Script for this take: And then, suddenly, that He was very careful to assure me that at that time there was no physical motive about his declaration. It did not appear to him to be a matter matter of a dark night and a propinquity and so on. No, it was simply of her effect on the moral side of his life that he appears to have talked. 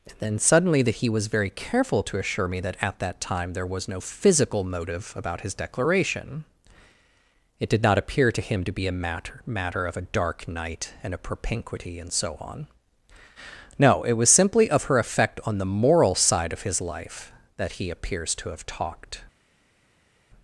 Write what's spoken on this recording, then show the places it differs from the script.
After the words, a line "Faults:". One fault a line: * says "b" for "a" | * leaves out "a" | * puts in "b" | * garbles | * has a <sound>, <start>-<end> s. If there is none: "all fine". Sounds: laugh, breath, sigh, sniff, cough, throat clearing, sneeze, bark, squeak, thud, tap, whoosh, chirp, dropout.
And then, suddenly, that He was very careful to assure me that at that time there was no physical motive about his declaration. It did not appear to him to be a matter matter of a dark night and a propinquity and so on. No, it was simply of her effect on the moral side of his life that he appears to have talked.
Faults:
all fine